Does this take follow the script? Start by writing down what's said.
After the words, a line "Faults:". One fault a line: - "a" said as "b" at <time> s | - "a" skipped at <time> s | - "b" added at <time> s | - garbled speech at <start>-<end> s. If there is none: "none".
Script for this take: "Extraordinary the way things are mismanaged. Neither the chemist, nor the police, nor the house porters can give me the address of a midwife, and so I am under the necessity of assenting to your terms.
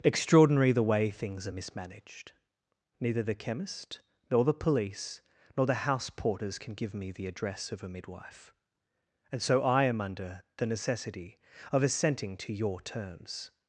"Extraordinary the way things are mismanaged. Neither the chemist, nor the police, nor the house porters can give me the address of a midwife, and so I am under the necessity of assenting to your terms.
Faults:
none